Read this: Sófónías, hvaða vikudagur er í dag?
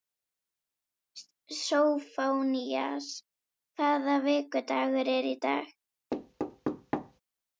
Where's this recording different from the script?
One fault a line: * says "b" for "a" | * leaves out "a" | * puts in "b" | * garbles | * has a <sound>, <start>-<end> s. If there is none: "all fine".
* has a thud, 6.1-7.2 s